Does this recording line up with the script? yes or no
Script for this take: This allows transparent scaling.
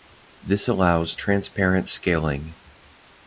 yes